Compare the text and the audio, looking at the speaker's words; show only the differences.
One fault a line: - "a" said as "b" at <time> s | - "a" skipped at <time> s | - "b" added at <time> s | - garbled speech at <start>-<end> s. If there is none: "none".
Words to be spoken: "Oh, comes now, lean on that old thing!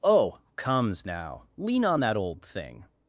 none